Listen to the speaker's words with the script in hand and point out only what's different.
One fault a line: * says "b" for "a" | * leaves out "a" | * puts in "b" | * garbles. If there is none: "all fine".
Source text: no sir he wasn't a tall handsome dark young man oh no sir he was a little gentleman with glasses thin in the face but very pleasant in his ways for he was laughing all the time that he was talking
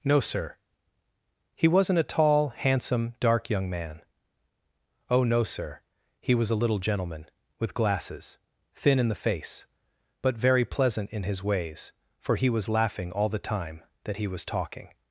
all fine